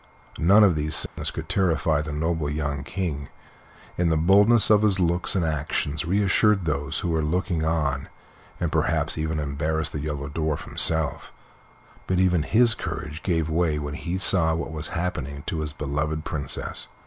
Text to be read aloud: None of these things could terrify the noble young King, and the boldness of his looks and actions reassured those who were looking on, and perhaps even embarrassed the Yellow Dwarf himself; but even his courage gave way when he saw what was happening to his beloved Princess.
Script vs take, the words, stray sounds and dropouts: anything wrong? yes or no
yes